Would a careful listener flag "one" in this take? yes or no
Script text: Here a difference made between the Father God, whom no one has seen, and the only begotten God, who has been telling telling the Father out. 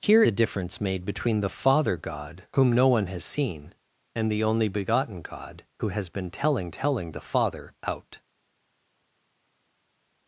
no